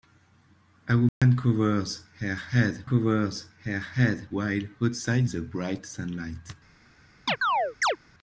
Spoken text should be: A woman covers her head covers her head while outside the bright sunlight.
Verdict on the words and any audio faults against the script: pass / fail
fail